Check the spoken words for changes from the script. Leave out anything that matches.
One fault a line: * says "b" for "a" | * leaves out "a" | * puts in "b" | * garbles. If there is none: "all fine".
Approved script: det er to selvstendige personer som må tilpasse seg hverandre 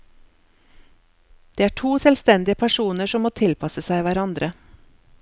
all fine